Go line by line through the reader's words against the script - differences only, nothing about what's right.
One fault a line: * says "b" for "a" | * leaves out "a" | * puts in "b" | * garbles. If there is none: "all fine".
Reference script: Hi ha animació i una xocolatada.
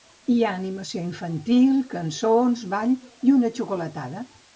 * puts in "infantil cançons ball"